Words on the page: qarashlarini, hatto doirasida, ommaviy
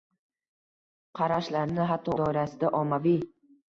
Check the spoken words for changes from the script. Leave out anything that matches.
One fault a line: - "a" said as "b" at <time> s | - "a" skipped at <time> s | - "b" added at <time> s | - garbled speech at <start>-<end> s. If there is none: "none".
none